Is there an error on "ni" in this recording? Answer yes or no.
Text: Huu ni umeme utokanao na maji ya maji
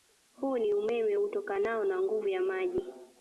no